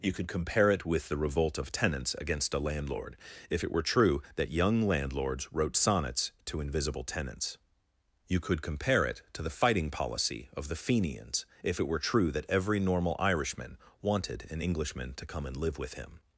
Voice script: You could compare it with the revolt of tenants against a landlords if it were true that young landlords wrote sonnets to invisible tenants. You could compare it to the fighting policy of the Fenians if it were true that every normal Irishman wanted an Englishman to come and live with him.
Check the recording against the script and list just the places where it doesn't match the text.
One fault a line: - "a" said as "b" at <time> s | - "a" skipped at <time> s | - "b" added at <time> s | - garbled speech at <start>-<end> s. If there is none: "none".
- "landlords" said as "landlord" at 2.6 s